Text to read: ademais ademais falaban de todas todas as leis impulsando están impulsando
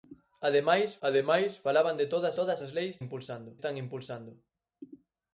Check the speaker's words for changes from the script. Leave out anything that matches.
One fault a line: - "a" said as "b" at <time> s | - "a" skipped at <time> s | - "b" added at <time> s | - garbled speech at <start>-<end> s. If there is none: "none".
none